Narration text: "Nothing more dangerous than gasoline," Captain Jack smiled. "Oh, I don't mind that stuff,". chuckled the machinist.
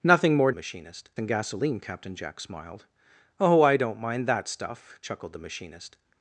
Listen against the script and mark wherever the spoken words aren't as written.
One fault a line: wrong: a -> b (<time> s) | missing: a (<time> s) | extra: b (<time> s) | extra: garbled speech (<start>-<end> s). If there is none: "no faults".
wrong: dangerous -> machinist (0.5 s)